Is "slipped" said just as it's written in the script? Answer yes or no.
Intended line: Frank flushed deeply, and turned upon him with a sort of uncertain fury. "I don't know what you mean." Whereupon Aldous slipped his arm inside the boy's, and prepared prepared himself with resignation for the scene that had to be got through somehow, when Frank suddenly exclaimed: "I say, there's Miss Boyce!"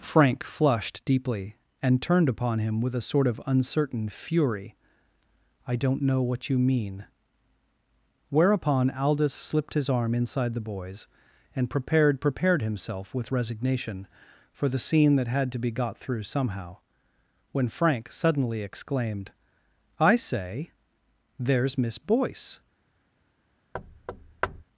yes